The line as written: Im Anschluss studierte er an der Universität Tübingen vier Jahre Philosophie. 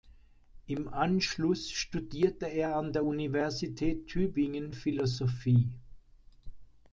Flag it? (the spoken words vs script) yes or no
yes